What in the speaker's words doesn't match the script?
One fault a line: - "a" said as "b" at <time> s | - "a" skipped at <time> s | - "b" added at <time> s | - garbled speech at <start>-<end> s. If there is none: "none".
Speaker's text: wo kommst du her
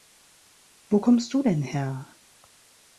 - "denn" added at 1.4 s